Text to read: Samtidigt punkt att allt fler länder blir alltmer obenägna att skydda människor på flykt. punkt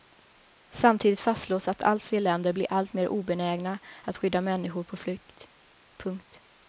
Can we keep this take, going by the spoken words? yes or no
no